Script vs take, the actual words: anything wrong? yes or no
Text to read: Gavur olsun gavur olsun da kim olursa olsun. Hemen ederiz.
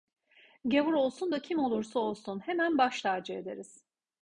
yes